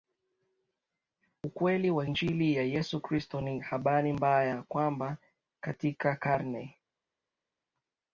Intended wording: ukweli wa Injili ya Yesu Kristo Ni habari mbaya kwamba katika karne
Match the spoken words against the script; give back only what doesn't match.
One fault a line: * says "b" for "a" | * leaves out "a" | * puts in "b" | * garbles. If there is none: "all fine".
all fine